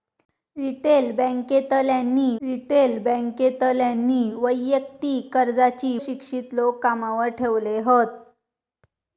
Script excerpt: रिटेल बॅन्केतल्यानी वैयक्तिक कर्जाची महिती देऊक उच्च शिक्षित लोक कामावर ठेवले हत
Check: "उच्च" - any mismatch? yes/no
yes